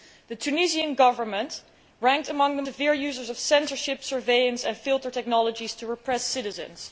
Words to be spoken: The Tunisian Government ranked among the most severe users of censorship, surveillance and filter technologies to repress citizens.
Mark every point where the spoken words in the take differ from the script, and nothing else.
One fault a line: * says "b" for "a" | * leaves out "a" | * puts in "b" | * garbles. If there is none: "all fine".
* leaves out "most"